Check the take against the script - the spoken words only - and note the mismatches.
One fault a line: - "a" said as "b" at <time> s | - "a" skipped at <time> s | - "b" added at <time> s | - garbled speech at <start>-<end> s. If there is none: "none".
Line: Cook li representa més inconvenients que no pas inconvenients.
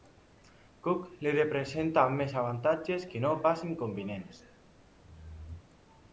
- "inconvenients" said as "avantatges" at 2.4 s